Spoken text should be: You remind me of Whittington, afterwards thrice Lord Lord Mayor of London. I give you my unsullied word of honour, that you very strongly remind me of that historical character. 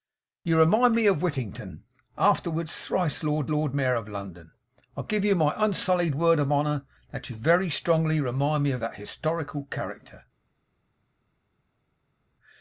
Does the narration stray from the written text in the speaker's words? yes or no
no